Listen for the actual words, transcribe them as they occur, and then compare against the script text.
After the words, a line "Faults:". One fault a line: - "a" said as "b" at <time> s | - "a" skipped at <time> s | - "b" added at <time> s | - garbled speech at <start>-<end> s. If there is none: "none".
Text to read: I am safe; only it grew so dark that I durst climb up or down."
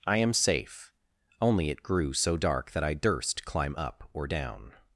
I am safe; only it grew so dark that I durst climb up or down."
Faults:
none